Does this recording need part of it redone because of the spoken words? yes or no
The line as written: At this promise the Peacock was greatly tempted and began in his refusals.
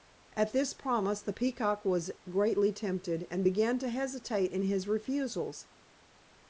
yes